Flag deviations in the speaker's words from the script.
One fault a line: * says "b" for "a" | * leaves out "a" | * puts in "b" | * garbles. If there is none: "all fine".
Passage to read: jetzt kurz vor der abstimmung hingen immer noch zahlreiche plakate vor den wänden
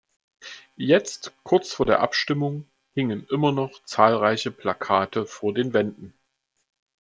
all fine